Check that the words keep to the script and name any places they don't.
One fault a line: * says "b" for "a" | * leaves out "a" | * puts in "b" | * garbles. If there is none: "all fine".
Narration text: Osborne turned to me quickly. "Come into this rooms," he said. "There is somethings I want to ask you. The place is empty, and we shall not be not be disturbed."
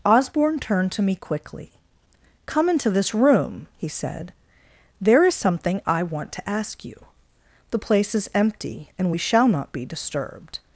* says "room" for "rooms"
* says "something" for "somethings"
* leaves out "not be"